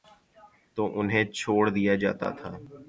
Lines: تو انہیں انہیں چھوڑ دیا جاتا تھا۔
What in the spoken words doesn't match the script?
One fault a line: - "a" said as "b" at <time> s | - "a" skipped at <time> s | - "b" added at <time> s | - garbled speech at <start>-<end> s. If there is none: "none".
- "انہیں" skipped at 1.2 s